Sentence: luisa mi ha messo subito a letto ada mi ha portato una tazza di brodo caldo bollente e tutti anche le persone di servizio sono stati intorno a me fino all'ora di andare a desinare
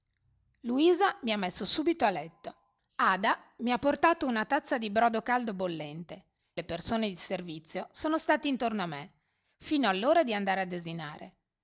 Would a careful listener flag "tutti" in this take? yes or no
yes